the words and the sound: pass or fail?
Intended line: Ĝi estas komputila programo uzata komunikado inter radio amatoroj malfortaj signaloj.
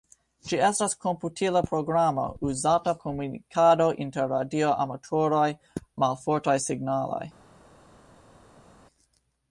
pass